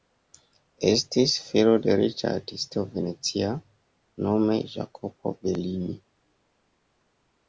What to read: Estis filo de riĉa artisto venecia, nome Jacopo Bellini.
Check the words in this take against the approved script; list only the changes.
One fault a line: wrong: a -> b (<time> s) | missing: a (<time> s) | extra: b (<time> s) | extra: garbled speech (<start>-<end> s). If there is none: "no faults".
no faults